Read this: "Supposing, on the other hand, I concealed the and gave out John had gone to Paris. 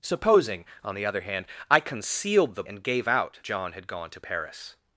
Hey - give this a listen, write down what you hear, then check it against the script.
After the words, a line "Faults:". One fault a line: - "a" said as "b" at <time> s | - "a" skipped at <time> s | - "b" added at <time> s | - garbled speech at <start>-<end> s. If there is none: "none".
"Supposing, on the other hand, I concealed the and gave out John had gone to Paris.
Faults:
none